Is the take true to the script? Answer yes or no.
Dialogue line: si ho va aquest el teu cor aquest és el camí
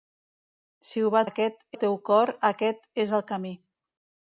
yes